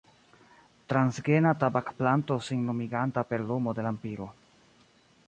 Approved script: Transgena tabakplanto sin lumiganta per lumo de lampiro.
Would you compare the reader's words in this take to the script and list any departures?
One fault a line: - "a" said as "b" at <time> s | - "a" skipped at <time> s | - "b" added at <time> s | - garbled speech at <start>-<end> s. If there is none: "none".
none